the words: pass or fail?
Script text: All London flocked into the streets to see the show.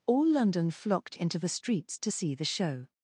pass